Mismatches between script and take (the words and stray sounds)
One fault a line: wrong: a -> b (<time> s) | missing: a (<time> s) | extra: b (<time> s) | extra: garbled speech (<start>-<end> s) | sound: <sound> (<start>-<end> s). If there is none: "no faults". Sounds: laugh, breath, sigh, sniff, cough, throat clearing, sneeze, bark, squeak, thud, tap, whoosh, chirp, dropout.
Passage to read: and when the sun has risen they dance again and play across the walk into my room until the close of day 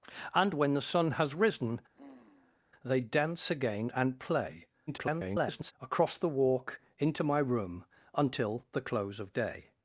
sound: sigh (1.9-2.6 s)
extra: garbled speech (4.9-5.7 s)